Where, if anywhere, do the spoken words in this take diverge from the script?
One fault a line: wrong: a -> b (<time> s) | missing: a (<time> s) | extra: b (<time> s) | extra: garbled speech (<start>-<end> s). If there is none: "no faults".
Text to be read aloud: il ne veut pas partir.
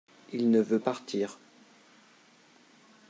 missing: pas (0.8 s)